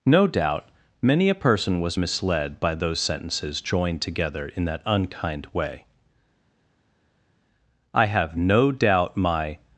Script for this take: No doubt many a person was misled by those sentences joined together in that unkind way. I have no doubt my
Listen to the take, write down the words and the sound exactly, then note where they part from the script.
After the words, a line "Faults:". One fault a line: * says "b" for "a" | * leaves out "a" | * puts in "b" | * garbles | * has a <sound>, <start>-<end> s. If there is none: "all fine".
No doubt many a person was misled by those sentences joined together in that unkind way. I have no doubt my
Faults:
all fine